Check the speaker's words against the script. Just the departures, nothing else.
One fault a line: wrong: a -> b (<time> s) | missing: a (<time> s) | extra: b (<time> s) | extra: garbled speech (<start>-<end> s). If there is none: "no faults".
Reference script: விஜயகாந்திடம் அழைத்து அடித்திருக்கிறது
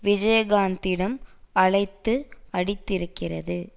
no faults